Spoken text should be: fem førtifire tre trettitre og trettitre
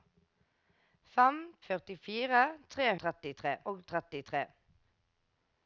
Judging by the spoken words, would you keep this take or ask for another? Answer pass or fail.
pass